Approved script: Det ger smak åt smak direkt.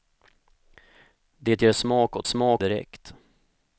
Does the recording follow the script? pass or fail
pass